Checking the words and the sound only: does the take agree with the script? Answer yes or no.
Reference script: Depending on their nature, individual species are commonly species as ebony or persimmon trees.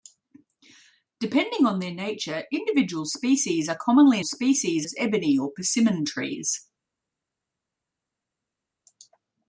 yes